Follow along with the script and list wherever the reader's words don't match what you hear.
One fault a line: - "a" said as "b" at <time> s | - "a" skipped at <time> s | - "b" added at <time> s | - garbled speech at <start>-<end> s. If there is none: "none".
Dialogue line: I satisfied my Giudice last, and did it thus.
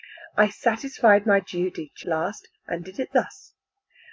none